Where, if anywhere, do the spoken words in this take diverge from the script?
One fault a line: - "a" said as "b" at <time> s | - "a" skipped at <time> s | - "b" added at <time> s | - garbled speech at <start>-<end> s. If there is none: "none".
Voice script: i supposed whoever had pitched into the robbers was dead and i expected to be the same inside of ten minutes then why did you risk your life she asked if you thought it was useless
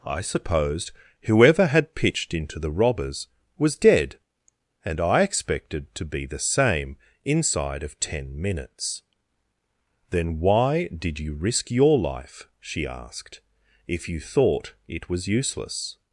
none